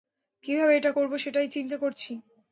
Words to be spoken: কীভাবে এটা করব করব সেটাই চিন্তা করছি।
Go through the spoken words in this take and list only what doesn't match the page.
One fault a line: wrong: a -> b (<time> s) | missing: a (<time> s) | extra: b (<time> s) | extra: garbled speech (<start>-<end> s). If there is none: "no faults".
missing: করব (1.1 s)